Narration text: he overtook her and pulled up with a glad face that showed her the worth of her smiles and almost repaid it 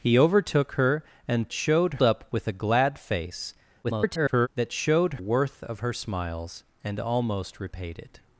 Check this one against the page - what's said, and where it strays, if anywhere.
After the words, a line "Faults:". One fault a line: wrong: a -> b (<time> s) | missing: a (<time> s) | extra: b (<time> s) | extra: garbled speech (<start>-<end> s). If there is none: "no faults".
he overtook her and showed up with a glad face [garbled] that showed worth of her smiles and almost repaid it
Faults:
wrong: pulled -> showed (1.5 s)
extra: garbled speech (3.8-4.5 s)
missing: her the (5.1 s)